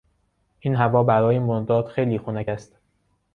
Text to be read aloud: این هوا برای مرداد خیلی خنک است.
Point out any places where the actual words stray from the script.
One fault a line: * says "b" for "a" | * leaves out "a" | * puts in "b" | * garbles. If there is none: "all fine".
all fine